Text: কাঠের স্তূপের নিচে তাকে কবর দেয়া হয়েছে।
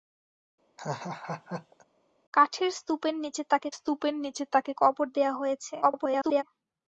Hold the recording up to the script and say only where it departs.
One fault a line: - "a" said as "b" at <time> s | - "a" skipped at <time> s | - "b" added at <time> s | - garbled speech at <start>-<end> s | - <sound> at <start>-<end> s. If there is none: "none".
- laugh at 0.8-1.8 s
- "স্তূপের নিচে তাকে" added at 3.7 s
- garbled speech at 5.8-6.4 s